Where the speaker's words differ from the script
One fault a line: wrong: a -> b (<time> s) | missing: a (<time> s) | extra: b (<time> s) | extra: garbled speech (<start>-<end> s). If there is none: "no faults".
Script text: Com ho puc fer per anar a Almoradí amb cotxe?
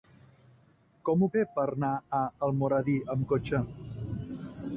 missing: puc (1.3 s)